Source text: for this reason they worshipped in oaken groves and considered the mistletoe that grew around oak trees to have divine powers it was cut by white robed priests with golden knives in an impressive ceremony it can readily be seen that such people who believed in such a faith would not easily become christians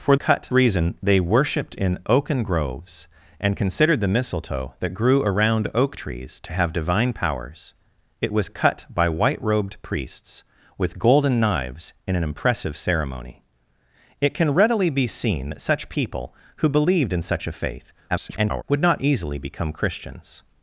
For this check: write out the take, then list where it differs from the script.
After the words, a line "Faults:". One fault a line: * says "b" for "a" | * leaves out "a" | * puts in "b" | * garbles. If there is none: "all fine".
for cut reason they worshipped in oaken groves and considered the mistletoe that grew around oak trees to have divine powers it was cut by white robed priests with golden knives in an impressive ceremony it can readily be seen that such people who believed in such a faith [garbled] would not easily become christians
Faults:
* says "cut" for "this"
* garbles